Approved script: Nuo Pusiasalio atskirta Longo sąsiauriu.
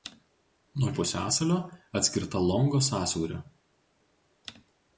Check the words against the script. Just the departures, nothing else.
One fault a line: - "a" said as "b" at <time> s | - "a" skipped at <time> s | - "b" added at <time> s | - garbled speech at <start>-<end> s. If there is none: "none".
none